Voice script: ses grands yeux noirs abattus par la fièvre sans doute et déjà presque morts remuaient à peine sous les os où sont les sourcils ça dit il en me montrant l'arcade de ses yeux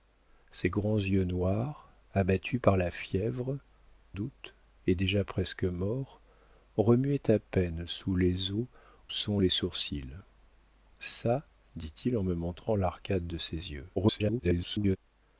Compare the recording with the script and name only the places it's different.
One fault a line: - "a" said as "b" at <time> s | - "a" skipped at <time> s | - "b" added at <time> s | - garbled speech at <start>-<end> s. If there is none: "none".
- "sans" skipped at 3.6 s
- "où" skipped at 8.7 s
- garbled speech at 14.0-15.0 s